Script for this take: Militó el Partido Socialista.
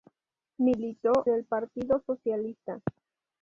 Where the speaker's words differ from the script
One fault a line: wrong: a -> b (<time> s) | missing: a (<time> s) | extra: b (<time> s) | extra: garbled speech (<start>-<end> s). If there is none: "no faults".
no faults